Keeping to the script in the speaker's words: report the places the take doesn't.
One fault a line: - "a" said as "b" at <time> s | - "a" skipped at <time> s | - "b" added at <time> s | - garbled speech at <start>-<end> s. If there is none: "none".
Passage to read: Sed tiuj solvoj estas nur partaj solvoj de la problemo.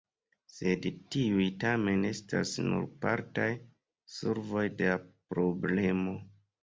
- "solvoj" said as "tamen" at 1.6 s